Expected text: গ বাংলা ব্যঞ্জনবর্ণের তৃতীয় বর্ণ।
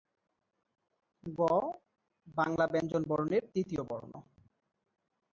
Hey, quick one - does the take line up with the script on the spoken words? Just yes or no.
yes